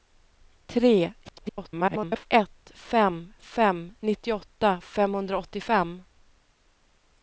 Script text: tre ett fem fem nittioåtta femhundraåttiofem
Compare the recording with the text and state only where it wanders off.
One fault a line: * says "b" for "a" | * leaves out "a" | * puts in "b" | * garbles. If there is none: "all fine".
* garbles